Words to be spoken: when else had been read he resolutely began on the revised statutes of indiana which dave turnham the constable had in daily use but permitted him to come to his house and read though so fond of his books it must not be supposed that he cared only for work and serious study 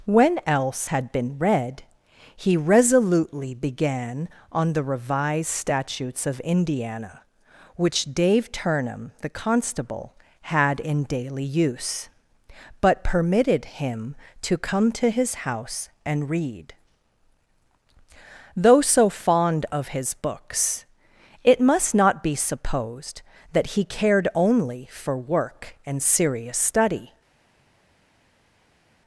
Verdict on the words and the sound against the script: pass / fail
pass